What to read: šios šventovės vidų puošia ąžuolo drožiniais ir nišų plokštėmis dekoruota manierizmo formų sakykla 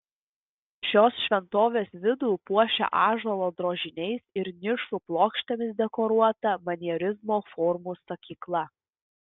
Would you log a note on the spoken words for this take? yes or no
no